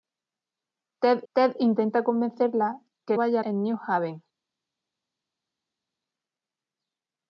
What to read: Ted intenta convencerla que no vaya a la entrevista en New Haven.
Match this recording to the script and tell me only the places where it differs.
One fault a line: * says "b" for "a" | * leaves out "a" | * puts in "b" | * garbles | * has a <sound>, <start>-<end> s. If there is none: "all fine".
* puts in "ted"
* leaves out "no"
* leaves out "la entrevista"